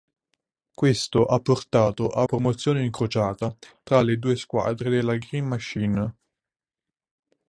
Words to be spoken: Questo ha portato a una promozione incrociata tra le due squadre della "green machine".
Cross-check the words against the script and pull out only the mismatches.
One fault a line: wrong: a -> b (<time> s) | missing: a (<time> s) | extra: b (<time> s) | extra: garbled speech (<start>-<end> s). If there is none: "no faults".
missing: una (2.2 s)